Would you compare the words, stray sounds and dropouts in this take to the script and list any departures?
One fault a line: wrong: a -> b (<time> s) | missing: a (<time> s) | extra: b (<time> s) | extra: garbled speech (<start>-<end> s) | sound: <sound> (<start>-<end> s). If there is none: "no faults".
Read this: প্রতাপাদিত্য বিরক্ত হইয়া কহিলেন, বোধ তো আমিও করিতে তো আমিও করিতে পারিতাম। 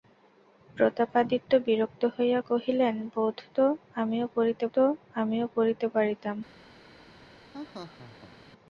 sound: laugh (7.5-8.5 s)